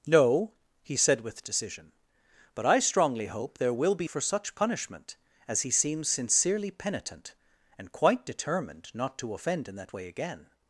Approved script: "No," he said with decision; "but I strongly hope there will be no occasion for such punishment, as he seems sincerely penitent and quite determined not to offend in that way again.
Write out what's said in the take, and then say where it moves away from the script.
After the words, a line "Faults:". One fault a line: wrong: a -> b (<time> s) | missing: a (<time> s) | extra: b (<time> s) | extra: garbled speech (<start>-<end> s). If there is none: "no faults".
"No," he said with decision; "but I strongly hope there will be for such punishment, as he seems sincerely penitent and quite determined not to offend in that way again.
Faults:
missing: no occasion (4.1 s)